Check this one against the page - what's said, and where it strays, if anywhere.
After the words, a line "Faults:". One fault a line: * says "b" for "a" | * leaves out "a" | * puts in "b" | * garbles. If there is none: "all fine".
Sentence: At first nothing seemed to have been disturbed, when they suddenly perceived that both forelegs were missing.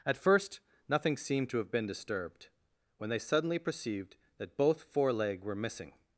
At first nothing seemed to have been disturbed, when they suddenly perceived that both foreleg were missing.
Faults:
* says "foreleg" for "forelegs"